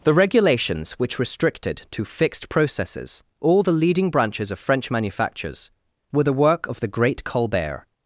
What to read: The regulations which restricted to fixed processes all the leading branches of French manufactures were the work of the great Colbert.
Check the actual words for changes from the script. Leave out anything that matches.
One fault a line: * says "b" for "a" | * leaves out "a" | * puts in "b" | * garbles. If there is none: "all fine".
all fine